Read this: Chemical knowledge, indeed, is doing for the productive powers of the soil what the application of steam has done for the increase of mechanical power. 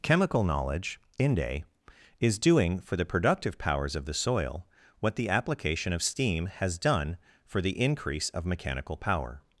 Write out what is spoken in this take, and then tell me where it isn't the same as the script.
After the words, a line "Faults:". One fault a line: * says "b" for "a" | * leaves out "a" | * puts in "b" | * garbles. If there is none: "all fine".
Chemical knowledge, inde, is doing for the productive powers of the soil what the application of steam has done for the increase of mechanical power.
Faults:
* says "inde" for "indeed"